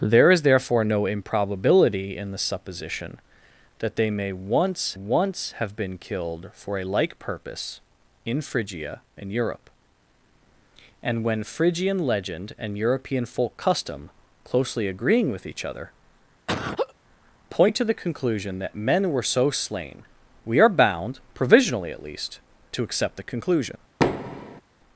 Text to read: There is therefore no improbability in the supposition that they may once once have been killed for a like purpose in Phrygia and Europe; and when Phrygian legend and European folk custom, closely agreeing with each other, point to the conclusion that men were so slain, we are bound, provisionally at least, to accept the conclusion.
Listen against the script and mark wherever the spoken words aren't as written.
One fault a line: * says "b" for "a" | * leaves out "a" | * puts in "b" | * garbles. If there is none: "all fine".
all fine